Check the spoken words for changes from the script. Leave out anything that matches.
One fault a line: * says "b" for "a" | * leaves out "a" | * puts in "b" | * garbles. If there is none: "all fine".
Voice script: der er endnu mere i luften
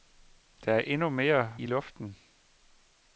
all fine